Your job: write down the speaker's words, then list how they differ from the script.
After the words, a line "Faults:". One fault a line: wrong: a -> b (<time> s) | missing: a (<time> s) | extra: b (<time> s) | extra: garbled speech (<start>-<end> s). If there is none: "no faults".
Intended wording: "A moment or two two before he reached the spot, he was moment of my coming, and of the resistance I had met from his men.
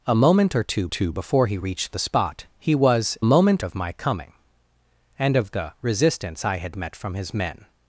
"A moment or two two before he reached the spot, he was moment of my coming, and of the resistance I had met from his men.
Faults:
no faults